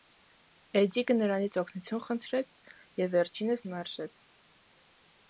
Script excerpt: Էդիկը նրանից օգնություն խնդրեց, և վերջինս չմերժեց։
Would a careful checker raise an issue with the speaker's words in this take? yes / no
no